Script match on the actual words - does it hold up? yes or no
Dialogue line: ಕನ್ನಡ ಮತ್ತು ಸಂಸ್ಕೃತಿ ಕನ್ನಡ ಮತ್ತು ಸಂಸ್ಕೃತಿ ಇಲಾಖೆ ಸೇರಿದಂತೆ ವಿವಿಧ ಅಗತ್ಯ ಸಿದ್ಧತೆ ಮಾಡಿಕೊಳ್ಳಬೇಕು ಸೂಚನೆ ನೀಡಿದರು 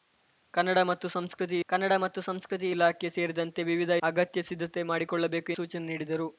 yes